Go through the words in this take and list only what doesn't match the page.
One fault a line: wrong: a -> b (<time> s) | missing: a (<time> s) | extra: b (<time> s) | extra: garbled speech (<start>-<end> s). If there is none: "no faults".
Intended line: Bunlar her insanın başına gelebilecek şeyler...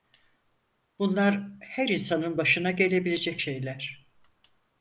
no faults